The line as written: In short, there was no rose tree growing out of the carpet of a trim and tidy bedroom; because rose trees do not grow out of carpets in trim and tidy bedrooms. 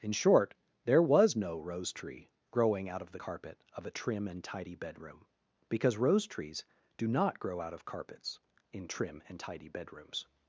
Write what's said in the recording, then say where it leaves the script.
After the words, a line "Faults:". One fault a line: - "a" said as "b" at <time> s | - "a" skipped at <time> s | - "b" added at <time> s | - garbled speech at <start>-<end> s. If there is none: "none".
In short, there was no rose tree growing out of the carpet of a trim and tidy bedroom; because rose trees do not grow out of carpets in trim and tidy bedrooms.
Faults:
none